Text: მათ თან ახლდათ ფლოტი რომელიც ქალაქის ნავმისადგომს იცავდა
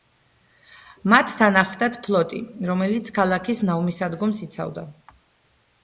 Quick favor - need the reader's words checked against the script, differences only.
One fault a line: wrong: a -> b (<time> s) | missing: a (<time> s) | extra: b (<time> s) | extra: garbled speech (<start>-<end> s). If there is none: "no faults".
no faults